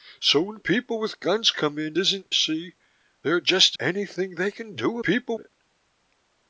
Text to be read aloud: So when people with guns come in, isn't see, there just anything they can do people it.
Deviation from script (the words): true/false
false